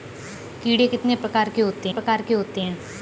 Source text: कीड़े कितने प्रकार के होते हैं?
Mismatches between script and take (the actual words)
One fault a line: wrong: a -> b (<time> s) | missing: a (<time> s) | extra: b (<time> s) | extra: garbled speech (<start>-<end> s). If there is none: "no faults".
extra: प्रकार के होते (1.9 s)